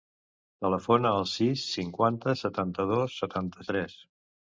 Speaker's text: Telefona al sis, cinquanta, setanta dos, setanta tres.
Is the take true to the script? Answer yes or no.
yes